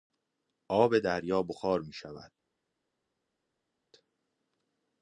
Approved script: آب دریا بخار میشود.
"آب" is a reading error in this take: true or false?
false